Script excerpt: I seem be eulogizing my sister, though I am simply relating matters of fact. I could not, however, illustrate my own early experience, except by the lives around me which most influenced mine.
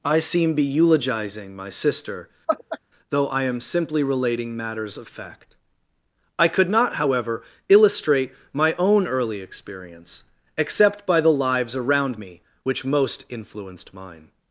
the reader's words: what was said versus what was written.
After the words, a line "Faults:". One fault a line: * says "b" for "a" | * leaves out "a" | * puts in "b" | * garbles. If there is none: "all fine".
I seem be eulogizing my sister, though I am simply relating matters of fact. I could not, however, illustrate my own early experience, except by the lives around me which most influenced mine.
Faults:
all fine